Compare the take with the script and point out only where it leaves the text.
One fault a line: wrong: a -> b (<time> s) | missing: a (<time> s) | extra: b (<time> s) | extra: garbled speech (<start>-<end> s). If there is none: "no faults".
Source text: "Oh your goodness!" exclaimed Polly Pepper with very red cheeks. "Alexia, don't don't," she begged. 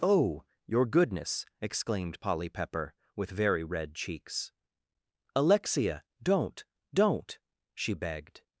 no faults